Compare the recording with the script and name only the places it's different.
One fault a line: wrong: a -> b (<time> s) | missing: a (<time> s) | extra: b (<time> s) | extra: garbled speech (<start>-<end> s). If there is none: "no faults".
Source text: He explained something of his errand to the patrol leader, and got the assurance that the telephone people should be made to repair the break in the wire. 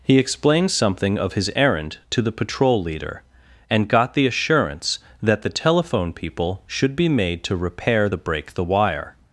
missing: in (8.5 s)